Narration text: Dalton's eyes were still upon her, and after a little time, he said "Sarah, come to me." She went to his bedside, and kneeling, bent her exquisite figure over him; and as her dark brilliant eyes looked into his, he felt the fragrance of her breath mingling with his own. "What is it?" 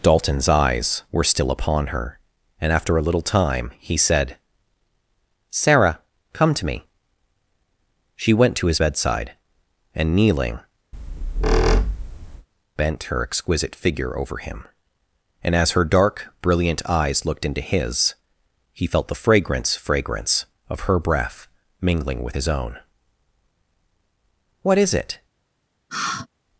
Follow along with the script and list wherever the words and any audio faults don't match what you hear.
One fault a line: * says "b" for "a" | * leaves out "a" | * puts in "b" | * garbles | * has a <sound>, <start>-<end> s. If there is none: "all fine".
* has a squeak, 10.9-12.5 s
* puts in "fragrance"
* has a sigh, 25.9-26.3 s